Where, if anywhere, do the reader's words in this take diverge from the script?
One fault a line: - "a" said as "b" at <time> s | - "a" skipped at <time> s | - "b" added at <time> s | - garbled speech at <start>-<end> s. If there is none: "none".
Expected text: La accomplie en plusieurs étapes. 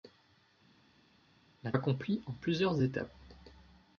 none